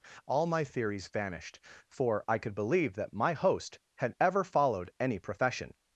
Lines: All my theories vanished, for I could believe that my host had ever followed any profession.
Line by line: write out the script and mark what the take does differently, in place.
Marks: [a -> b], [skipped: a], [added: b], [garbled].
All my theories vanished, for I could believe that my host had ever followed any profession.